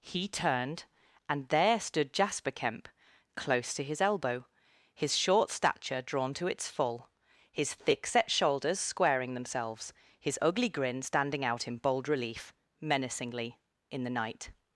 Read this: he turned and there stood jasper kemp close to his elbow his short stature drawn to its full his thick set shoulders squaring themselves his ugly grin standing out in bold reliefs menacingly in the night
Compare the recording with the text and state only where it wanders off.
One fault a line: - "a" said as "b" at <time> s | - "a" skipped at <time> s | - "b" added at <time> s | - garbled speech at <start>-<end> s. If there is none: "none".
- "reliefs" said as "relief" at 12.1 s